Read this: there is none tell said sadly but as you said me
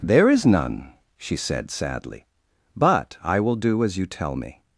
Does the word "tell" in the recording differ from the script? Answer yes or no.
yes